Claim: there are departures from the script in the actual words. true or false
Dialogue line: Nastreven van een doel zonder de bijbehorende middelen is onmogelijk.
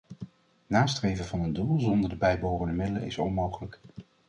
false